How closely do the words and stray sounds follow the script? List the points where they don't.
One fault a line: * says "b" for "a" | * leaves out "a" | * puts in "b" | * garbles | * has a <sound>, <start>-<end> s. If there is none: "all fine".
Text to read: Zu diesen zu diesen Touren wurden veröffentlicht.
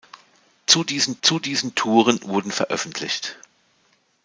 all fine